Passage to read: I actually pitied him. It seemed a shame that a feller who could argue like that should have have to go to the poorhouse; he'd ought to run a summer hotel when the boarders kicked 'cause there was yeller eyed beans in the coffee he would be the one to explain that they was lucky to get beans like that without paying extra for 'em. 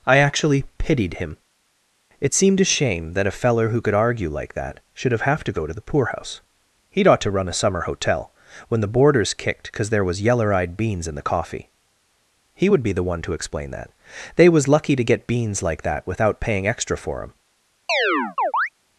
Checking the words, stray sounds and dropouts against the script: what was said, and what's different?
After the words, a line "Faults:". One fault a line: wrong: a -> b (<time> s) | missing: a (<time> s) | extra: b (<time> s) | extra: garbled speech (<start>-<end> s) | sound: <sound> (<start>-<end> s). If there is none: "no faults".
I actually pitied him. It seemed a shame that a feller who could argue like that should have have to go to the poorhouse; he'd ought to run a summer hotel when the boarders kicked 'cause there was yeller eyed beans in the coffee he would be the one to explain that they was lucky to get beans like that without paying extra for 'em.
Faults:
sound: chirp (17.9-18.7 s)